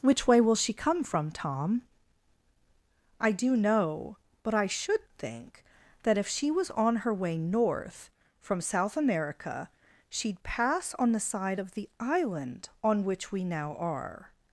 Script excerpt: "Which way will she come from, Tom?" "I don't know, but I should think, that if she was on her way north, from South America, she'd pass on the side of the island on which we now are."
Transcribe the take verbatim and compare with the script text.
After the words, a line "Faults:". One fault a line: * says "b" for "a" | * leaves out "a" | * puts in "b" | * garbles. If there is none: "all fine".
"Which way will she come from, Tom?" "I do know, but I should think, that if she was on her way north, from South America, she'd pass on the side of the island on which we now are."
Faults:
* says "do" for "don't"